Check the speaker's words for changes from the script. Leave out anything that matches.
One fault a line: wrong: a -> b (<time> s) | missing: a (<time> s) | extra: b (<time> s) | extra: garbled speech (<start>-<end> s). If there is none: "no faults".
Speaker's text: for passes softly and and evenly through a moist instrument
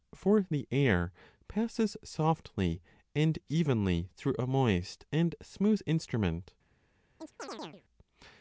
extra: the air (0.5 s)
missing: and (3.4 s)
extra: and smooth (5.1 s)